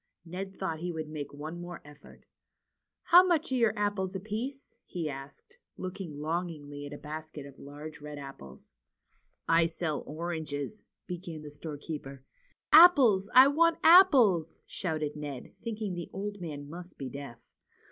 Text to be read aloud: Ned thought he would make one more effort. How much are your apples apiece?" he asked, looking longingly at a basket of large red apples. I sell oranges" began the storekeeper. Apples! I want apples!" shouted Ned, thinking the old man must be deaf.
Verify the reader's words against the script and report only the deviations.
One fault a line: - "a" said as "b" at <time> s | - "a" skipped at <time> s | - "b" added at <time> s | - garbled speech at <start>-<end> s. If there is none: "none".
none